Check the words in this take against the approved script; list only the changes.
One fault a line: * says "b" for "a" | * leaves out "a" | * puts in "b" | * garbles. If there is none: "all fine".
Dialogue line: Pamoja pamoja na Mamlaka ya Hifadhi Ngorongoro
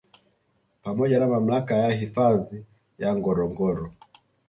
* leaves out "pamoja"
* puts in "ya"